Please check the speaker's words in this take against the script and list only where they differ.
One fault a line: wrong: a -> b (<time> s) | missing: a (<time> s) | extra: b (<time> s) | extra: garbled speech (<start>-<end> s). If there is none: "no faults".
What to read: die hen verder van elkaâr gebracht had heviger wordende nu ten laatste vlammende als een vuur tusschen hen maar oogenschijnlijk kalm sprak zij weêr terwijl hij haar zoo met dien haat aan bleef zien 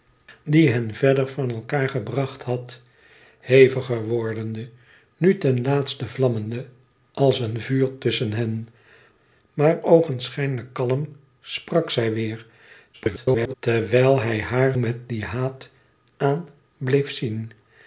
extra: garbled speech (12.9-13.5 s)
missing: zoo (14.8 s)